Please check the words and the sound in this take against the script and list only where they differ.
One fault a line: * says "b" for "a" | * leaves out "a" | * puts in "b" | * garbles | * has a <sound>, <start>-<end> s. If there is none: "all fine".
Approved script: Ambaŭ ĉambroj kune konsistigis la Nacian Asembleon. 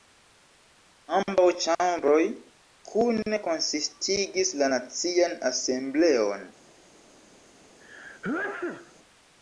* has a sneeze, 7.8-8.9 s